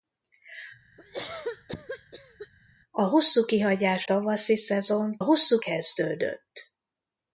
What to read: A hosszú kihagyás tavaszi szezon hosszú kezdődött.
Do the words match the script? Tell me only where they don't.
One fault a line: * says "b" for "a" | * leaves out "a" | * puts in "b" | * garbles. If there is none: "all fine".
all fine